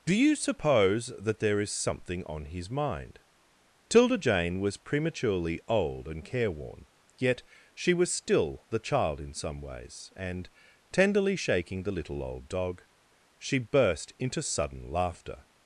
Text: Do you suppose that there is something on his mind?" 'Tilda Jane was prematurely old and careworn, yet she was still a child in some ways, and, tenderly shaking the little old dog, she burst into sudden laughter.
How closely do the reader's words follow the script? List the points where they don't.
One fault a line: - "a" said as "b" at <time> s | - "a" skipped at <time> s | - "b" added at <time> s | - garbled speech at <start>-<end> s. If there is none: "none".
- "a" said as "the" at 8.7 s